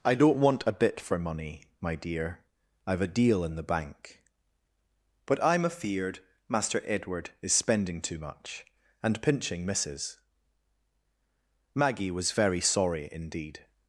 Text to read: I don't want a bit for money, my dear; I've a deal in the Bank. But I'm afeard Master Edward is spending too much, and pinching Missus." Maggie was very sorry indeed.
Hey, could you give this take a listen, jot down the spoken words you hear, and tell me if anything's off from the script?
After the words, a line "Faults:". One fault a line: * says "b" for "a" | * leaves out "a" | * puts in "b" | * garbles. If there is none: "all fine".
I don't want a bit for money, my dear; I've a deal in the Bank. But I'm afeard Master Edward is spending too much, and pinching Missus." Maggie was very sorry indeed.
Faults:
all fine